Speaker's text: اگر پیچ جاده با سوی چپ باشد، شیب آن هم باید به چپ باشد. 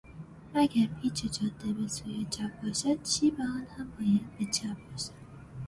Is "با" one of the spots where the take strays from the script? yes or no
yes